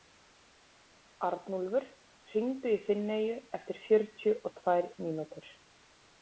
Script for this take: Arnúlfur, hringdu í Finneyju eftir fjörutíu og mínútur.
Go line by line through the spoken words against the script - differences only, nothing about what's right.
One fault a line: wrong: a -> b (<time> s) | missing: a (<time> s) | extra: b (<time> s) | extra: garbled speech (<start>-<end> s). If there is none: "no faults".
extra: tvær (4.6 s)